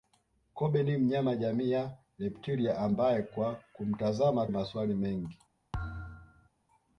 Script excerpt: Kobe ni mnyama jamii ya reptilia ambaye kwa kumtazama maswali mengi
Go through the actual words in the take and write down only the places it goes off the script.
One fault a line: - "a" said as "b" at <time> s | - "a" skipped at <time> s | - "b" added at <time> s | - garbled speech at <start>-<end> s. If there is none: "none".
none